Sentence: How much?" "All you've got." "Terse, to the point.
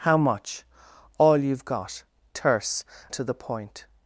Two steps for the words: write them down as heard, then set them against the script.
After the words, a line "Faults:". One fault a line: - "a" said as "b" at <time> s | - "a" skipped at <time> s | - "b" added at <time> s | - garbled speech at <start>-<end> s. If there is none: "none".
How much?" "All you've got." "Terse, to the point.
Faults:
none